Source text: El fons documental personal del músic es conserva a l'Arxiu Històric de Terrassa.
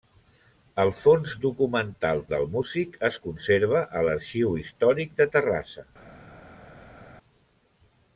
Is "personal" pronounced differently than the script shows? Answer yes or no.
yes